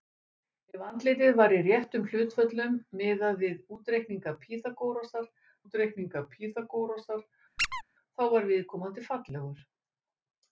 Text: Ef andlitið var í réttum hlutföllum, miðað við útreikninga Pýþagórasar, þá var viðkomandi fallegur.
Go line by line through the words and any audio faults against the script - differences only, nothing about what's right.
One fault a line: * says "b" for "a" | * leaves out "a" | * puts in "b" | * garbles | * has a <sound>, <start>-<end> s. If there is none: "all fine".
* puts in "útreikninga Pýþagórasar"
* has a squeak, 7.6-7.8 s